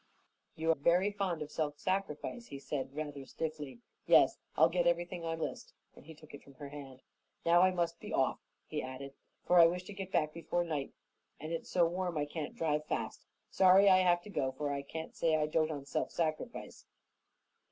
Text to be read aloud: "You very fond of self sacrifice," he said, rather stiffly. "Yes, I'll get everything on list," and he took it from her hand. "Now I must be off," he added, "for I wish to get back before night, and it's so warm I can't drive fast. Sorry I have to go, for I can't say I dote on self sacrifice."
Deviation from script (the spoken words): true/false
false